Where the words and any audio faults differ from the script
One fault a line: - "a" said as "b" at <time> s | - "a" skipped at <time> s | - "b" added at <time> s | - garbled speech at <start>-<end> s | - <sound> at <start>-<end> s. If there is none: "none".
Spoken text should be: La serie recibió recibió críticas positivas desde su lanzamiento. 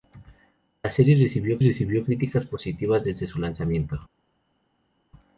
none